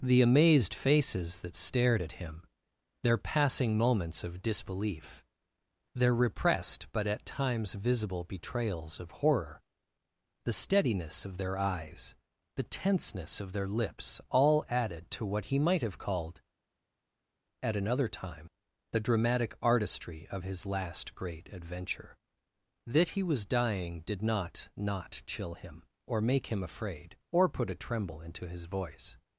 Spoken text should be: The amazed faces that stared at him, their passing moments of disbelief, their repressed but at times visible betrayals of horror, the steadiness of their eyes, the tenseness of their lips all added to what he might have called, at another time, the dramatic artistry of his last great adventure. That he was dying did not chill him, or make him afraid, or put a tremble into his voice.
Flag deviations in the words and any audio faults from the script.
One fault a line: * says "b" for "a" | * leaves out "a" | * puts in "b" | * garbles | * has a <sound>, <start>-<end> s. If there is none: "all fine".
* puts in "not"